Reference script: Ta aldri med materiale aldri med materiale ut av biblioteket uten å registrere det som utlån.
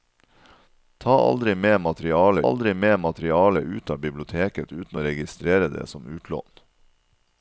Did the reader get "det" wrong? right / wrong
right